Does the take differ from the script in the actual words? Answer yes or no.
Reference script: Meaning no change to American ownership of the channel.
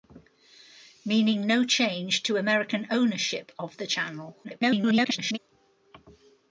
yes